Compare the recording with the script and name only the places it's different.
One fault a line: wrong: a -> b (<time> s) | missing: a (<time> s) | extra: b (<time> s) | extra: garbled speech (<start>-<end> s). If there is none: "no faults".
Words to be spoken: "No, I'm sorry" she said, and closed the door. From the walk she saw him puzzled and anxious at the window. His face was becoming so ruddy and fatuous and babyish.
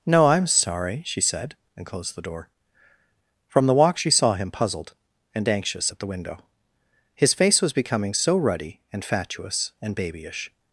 no faults